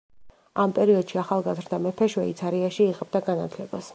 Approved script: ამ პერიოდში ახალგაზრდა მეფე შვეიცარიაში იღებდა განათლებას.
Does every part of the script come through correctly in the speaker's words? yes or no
yes